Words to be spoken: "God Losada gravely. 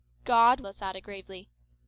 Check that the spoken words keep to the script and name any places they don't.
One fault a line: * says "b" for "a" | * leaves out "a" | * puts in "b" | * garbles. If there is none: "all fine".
all fine